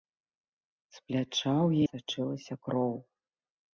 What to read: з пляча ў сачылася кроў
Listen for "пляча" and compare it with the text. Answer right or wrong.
right